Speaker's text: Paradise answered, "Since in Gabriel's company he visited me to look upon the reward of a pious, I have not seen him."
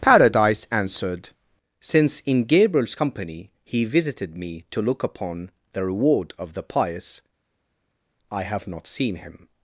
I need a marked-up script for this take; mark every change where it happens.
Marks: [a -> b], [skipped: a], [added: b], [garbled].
Paradise answered, "Since in Gabriel's company he visited me to look upon the reward of [a -> the] pious, I have not seen him."